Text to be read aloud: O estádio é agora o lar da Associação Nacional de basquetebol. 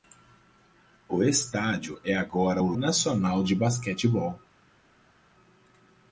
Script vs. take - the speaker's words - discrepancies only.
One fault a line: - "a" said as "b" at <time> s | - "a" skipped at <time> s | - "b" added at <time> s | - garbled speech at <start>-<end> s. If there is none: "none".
- "lar da Associação" skipped at 2.7 s